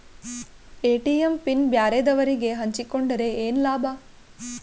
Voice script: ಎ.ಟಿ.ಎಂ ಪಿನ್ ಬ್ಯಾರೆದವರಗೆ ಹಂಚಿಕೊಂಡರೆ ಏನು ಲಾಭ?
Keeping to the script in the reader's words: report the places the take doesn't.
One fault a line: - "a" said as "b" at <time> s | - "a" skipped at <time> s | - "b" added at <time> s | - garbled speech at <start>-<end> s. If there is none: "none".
none